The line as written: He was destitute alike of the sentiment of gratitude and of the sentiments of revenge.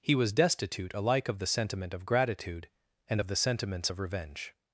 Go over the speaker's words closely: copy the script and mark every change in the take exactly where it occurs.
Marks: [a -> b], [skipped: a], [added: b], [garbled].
He was destitute alike of the sentiment of gratitude and of the sentiments of revenge.